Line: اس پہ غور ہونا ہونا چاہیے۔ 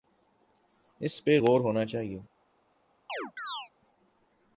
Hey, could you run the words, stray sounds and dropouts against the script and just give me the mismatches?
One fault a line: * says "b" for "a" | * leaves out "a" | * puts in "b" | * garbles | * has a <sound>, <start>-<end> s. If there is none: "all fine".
* leaves out "ہونا"
* has a chirp, 3.1-3.7 s